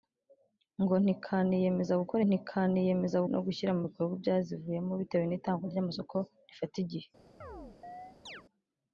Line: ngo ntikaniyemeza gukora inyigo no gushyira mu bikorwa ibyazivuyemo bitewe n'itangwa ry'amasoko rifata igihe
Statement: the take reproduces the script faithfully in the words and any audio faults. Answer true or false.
false